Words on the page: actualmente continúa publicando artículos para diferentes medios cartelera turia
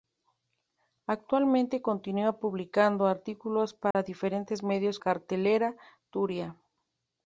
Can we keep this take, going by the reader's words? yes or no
yes